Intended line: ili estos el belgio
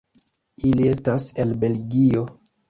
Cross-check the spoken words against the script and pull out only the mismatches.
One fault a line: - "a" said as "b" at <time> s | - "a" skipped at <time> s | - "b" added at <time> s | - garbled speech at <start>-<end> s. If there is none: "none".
- "estos" said as "estas" at 0.9 s